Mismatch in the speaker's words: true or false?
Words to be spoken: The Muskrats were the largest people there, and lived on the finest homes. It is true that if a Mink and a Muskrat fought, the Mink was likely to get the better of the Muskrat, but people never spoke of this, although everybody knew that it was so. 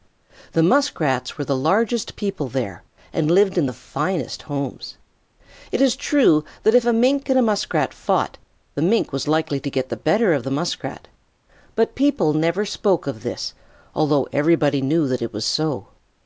true